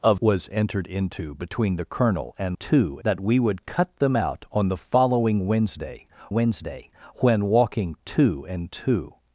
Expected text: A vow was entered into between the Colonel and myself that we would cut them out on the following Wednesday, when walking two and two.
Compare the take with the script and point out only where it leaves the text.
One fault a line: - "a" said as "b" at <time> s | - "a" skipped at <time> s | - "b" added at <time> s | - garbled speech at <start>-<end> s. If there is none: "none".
- "vow" skipped at 0.1 s
- "myself" said as "two" at 2.6 s
- "Wednesday" added at 6.3 s